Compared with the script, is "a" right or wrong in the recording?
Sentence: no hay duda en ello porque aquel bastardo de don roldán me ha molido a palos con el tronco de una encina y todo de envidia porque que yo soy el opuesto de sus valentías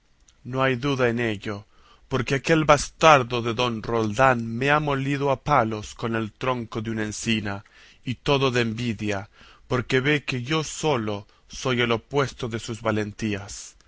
right